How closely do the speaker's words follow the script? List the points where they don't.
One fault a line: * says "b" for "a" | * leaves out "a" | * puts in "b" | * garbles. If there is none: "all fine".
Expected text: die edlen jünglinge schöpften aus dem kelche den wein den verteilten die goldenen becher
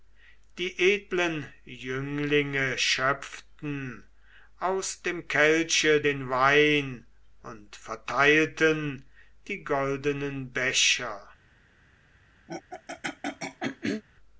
* says "und" for "den"